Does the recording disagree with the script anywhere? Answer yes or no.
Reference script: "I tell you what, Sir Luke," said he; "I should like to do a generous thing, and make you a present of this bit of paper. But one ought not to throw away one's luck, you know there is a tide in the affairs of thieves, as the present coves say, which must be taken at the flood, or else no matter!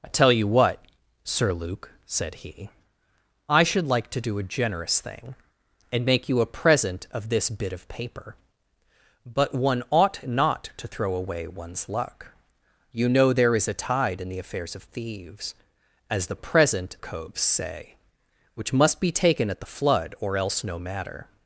no